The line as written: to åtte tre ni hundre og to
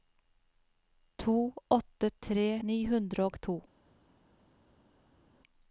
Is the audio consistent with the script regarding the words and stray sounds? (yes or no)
yes